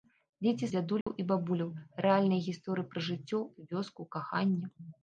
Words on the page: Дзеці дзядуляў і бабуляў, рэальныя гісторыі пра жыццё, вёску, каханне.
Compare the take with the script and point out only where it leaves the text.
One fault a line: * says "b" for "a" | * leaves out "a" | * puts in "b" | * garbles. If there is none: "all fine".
all fine